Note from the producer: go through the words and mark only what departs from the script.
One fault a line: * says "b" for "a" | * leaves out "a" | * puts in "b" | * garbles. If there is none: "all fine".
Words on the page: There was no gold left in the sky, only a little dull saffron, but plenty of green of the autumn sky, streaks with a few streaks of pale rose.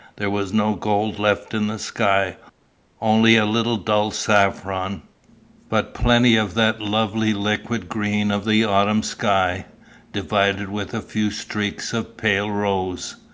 * puts in "that lovely liquid"
* says "divided" for "streaks"